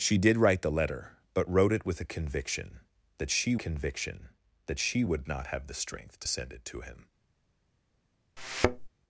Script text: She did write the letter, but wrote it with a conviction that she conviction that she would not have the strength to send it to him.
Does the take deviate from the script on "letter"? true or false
false